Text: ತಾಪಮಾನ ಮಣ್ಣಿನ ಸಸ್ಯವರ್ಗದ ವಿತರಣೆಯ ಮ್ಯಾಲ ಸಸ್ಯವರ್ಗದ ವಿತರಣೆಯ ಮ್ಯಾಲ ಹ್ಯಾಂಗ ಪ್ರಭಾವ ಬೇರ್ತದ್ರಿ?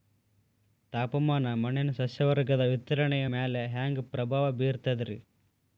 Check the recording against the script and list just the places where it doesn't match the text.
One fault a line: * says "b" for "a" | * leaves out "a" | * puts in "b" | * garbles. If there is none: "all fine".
* leaves out "ಸಸ್ಯವರ್ಗದ ವಿತರಣೆಯ ಮ್ಯಾಲ"